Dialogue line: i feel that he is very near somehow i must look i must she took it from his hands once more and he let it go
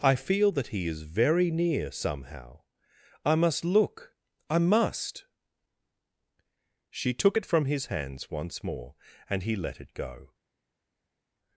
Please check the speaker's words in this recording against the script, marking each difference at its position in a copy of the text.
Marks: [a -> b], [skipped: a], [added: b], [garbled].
i feel that he is very near somehow i must look i must she took it from his hands once more and he let it go